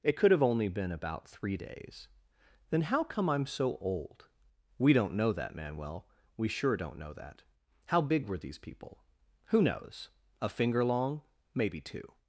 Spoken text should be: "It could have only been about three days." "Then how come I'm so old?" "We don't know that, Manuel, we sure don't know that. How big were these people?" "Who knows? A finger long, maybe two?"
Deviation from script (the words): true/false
false